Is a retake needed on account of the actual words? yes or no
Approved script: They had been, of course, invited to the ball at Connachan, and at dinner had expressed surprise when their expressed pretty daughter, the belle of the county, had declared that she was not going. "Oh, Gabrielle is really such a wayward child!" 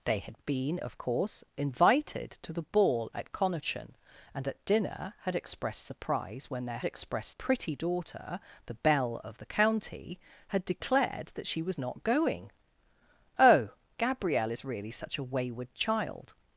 no